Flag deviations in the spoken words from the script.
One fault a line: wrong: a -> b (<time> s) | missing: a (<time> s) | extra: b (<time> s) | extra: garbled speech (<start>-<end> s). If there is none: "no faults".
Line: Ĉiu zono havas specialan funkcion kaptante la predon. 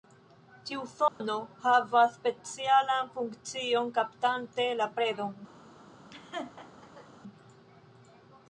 no faults